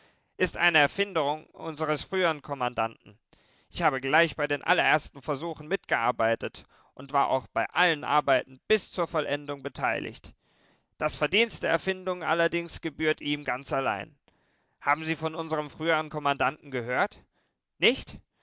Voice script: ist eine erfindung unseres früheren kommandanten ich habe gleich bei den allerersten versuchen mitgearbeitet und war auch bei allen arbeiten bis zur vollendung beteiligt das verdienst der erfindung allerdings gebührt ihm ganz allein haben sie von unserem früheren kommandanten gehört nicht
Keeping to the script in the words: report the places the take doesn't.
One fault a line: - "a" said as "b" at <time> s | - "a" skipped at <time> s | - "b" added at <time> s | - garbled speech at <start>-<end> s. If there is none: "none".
none